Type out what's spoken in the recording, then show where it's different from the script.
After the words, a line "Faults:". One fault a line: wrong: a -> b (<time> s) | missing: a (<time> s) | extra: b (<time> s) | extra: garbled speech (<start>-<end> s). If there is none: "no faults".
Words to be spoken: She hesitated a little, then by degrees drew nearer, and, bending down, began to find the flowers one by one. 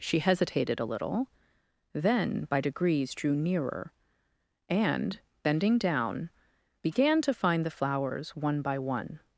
She hesitated a little, then by degrees drew nearer, and, bending down, began to find the flowers one by one.
Faults:
no faults